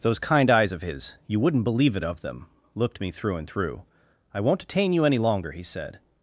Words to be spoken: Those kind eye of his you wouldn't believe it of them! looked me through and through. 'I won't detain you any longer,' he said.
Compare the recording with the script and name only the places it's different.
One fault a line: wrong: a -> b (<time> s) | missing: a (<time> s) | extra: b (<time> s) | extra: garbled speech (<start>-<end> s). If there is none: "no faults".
wrong: eye -> eyes (0.5 s)